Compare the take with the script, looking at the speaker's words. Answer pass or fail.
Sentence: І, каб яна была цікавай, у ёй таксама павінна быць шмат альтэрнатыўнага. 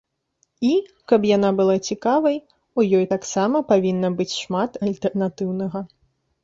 pass